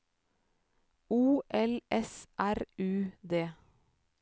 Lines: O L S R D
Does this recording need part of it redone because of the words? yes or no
yes